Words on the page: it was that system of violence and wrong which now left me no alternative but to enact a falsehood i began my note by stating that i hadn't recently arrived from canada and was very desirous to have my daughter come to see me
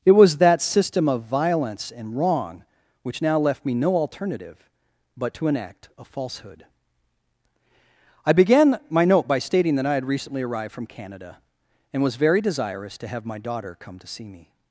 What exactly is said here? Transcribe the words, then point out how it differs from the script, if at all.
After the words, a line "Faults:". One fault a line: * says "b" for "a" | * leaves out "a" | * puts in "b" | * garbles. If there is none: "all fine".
it was that system of violence and wrong which now left me no alternative but to enact a falsehood i began my note by stating that i had recently arrived from canada and was very desirous to have my daughter come to see me
Faults:
* says "had" for "hadn't"